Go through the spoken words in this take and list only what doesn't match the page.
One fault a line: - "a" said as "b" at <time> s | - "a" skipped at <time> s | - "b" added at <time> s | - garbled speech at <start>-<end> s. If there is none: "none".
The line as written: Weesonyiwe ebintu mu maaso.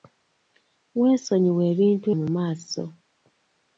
none